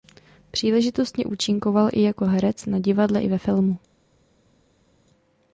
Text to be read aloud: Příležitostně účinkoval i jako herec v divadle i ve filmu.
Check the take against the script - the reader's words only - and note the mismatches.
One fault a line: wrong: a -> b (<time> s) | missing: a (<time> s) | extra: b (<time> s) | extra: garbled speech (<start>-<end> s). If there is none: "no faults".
wrong: v -> na (2.6 s)